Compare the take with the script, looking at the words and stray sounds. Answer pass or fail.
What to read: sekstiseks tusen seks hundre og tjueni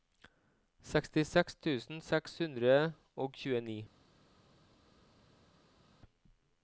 pass